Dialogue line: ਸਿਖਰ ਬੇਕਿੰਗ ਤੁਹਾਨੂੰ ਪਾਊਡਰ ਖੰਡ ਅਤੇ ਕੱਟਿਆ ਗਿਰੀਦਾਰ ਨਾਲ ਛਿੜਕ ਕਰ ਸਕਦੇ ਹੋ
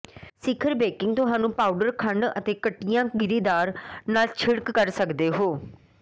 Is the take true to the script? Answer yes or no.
yes